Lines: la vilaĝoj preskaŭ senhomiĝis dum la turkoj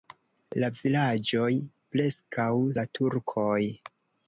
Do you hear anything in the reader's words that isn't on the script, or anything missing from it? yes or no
yes